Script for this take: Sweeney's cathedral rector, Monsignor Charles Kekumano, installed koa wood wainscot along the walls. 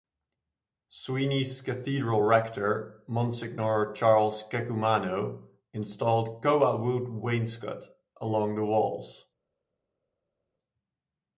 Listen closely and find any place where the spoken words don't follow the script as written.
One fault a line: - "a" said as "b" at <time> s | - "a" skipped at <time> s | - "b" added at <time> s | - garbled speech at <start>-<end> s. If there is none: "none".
none